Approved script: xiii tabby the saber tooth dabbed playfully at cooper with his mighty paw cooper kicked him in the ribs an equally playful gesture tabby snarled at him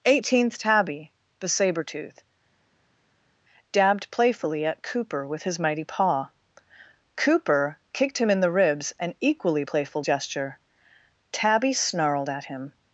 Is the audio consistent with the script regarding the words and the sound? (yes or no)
no